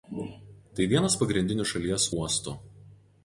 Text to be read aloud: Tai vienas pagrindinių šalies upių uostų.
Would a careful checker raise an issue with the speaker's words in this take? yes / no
yes